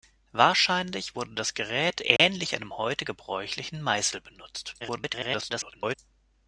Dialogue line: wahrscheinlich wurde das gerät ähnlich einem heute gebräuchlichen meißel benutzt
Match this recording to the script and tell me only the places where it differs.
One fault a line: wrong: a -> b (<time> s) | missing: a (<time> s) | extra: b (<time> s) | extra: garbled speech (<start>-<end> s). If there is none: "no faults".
extra: garbled speech (4.8-6.0 s)